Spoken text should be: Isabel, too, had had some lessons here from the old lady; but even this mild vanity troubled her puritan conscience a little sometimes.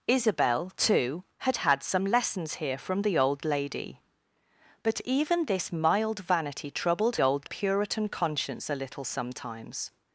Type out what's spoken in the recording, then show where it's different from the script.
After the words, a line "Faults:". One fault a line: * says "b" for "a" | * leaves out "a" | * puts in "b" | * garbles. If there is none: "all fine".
Isabel, too, had had some lessons here from the old lady; but even this mild vanity troubled old puritan conscience a little sometimes.
Faults:
* says "old" for "her"